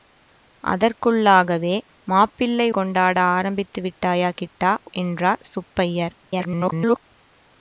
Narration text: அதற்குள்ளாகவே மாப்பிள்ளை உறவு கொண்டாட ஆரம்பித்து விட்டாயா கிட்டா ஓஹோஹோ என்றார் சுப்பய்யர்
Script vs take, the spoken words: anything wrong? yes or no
yes